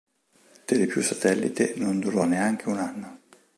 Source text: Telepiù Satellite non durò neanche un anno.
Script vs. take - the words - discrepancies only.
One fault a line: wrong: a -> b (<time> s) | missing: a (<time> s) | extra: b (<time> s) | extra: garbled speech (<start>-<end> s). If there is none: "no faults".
no faults